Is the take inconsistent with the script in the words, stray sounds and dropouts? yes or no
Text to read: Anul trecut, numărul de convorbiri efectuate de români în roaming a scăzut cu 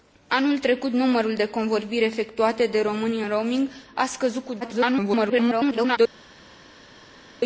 yes